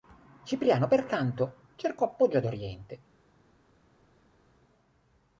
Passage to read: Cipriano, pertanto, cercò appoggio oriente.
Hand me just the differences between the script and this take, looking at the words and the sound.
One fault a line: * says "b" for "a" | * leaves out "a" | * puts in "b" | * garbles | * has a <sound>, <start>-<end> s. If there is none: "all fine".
* puts in "ad"